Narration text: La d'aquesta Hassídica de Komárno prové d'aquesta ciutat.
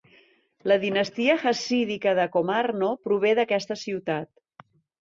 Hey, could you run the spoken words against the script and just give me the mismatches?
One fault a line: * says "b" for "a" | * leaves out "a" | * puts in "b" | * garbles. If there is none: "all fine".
* says "dinastia" for "d'aquesta"